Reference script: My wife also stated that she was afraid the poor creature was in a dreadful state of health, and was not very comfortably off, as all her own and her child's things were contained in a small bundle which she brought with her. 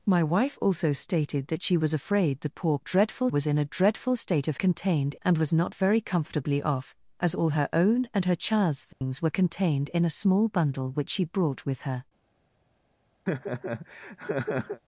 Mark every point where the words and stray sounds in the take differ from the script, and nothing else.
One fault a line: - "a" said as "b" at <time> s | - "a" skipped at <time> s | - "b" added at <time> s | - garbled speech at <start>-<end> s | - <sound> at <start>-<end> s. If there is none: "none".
- "creature" said as "dreadful" at 2.8 s
- "health" said as "contained" at 4.6 s
- dropout at 8.9-9.0 s
- laugh at 13.3-14.8 s